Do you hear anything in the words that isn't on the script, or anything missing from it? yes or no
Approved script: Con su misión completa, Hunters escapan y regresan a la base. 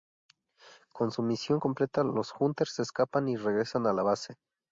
yes